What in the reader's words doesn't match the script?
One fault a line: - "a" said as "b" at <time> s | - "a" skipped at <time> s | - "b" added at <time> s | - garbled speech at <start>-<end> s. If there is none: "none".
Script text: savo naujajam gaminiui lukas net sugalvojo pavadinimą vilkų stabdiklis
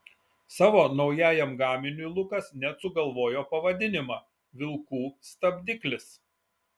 none